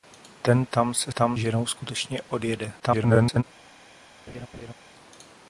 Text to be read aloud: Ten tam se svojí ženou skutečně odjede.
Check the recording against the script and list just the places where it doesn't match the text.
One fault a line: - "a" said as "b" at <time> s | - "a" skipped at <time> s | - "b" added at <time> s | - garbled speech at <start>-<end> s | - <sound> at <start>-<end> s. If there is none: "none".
- "svojí" said as "tam" at 1.1 s
- garbled speech at 2.8-3.4 s
- laugh at 4.3-4.7 s